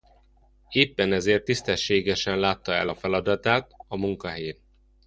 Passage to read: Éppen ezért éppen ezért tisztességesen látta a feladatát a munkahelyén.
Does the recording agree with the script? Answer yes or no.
no